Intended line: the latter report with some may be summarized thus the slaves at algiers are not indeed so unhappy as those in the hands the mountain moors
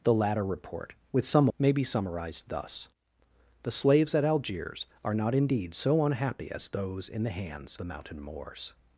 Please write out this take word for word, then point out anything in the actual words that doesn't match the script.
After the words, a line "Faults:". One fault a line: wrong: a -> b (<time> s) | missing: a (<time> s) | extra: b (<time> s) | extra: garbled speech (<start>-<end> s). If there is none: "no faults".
the latter report with some may be summarized thus the slaves at algiers are not indeed so unhappy as those in the hands the mountain moors
Faults:
no faults